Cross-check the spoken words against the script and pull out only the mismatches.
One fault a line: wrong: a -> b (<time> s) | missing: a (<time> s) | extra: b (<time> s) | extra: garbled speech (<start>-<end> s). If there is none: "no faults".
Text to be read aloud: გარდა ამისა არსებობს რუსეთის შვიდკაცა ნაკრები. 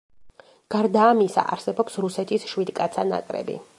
no faults